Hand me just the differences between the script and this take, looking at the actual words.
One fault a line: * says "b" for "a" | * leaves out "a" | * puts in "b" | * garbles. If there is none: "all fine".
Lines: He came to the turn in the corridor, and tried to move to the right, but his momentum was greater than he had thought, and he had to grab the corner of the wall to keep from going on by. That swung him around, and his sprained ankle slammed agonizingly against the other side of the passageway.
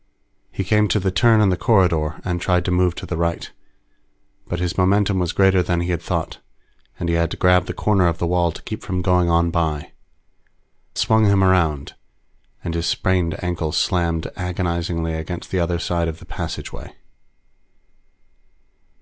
* leaves out "That"